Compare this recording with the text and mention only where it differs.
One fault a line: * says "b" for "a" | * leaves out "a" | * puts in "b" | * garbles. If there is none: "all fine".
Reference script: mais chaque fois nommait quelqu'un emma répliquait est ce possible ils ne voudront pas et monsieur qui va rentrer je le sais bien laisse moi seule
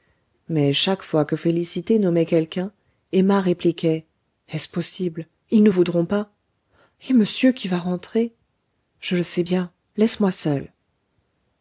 * puts in "que félicité"